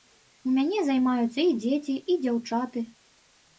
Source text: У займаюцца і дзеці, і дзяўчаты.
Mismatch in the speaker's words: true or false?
true